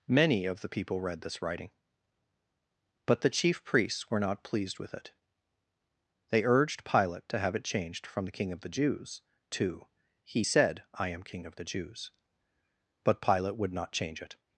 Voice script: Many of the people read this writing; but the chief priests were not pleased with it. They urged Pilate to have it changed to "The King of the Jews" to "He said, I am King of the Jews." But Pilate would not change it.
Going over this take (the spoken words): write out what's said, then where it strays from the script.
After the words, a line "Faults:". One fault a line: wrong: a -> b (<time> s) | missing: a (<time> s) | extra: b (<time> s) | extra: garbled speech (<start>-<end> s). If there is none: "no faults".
Many of the people read this writing; but the chief priests were not pleased with it. They urged Pilate to have it changed from "The King of the Jews" to "He said, I am King of the Jews." But Pilate would not change it.
Faults:
wrong: to -> from (8.1 s)